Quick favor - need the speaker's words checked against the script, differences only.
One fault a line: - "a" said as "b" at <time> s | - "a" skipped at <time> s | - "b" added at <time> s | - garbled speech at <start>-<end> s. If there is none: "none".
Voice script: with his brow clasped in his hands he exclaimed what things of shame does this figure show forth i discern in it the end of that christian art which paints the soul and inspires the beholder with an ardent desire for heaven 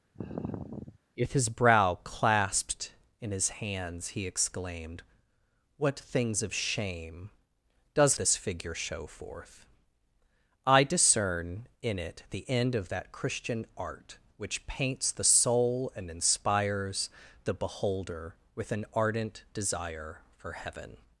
none